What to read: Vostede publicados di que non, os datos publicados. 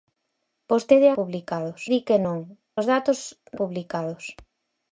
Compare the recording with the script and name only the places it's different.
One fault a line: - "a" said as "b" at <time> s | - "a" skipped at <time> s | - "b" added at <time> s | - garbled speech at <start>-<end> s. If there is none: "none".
none